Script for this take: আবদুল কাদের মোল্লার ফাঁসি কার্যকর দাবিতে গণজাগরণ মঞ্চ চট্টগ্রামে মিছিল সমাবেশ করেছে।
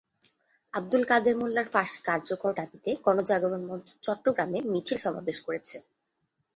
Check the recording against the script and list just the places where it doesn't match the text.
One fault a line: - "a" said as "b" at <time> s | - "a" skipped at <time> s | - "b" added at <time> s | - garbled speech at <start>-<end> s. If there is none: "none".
none